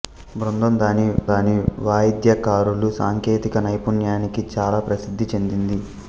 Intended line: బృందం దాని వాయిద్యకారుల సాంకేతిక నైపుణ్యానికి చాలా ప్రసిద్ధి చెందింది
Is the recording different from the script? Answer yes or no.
yes